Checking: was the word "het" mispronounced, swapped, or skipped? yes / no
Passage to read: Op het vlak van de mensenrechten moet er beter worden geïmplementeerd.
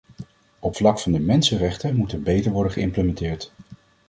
yes